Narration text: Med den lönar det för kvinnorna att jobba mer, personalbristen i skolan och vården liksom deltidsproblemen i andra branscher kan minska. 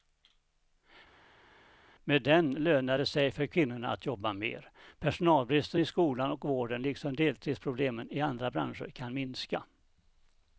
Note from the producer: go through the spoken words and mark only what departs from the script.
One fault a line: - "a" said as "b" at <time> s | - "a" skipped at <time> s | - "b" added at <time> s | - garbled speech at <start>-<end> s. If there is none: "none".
- "sig" added at 3.1 s